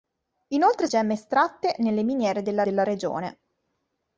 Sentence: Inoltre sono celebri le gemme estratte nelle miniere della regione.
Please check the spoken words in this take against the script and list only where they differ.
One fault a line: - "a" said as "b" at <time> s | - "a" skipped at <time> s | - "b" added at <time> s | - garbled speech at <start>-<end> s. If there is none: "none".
- "sono celebri le" skipped at 0.9 s
- "della" added at 2.6 s